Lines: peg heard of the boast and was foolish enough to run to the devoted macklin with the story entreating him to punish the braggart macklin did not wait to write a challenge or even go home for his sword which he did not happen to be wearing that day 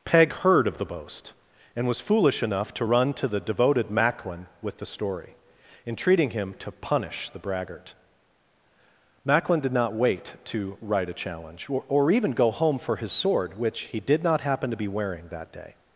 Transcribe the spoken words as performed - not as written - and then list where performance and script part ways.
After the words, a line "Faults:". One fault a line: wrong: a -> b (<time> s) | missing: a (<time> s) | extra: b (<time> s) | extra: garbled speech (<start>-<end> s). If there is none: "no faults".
peg heard of the boast and was foolish enough to run to the devoted macklin with the story entreating him to punish the braggart macklin did not wait to write a challenge or or even go home for his sword which he did not happen to be wearing that day
Faults:
extra: or (11.9 s)